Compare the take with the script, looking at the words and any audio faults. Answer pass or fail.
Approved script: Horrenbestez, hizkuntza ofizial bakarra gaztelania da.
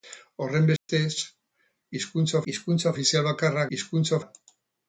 fail